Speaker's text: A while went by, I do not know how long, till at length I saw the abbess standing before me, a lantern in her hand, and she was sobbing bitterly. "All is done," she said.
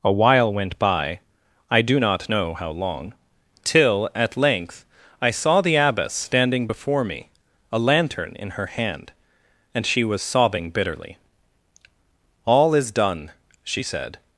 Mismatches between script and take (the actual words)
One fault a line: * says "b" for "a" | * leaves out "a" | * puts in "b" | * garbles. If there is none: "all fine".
all fine